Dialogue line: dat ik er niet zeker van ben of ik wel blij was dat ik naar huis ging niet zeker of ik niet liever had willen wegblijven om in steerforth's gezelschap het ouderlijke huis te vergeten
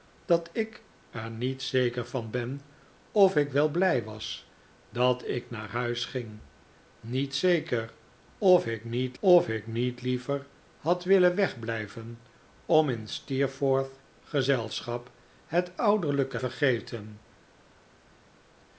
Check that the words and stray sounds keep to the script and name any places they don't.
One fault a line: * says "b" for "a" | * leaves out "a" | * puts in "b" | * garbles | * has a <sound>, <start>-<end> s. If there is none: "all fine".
* puts in "of ik niet"
* leaves out "huis te"